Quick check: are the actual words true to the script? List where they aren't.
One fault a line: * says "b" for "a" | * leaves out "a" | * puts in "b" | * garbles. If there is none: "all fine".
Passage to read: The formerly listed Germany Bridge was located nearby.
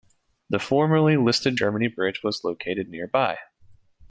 all fine